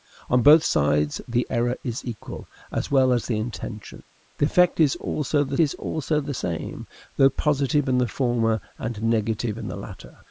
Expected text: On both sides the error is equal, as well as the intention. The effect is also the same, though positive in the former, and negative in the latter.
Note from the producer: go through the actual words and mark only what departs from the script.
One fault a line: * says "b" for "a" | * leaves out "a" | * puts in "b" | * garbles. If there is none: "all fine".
* puts in "is also the"